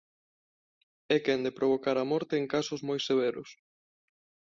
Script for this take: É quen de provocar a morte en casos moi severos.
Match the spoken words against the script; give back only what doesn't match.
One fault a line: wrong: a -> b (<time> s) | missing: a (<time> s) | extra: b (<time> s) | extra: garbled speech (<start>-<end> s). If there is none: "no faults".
no faults